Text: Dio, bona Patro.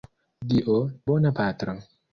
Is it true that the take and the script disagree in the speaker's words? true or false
false